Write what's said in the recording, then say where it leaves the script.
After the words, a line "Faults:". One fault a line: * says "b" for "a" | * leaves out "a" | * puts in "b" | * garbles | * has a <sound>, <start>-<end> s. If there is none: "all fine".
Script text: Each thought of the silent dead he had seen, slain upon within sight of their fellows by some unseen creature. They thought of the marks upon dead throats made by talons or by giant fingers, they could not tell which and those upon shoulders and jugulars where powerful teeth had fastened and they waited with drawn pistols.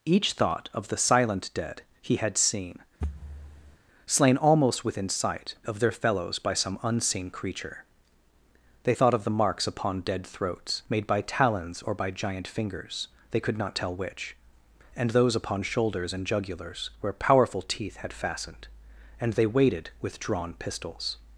Each thought of the silent dead he had seen, slain almost within sight of their fellows by some unseen creature. They thought of the marks upon dead throats made by talons or by giant fingers, they could not tell which and those upon shoulders and jugulars where powerful teeth had fastened and they waited with drawn pistols.
Faults:
* has a thud, 3.0-3.8 s
* says "almost" for "upon"